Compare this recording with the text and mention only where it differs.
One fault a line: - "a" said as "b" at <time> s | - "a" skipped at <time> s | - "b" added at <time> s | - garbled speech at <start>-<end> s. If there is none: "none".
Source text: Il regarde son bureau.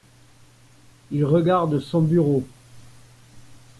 none